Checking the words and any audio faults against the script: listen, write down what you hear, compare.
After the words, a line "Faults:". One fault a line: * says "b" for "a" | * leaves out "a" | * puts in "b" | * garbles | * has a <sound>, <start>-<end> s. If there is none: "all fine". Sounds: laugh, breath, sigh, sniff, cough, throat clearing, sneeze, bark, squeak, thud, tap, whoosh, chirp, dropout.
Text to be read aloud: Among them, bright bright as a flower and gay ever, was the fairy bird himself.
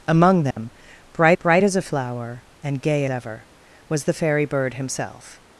Among them, bright bright as a flower and gay ever, was the fairy bird himself.
Faults:
* has a dropout, 0.5-0.6 s